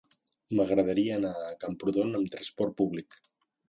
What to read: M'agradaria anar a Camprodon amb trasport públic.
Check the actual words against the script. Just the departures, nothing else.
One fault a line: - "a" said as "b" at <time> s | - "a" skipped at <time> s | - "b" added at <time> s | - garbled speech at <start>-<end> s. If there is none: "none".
none